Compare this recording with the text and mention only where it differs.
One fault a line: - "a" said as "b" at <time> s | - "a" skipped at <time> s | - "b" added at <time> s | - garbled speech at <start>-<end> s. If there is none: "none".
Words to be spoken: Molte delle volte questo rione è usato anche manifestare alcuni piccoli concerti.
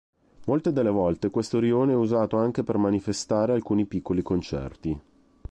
- "per" added at 2.6 s